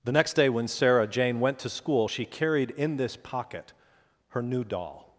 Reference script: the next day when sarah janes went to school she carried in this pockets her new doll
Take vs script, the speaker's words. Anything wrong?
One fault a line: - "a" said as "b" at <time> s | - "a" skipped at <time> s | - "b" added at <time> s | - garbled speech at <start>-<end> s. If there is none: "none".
- "janes" said as "jane" at 1.1 s
- "pockets" said as "pocket" at 3.2 s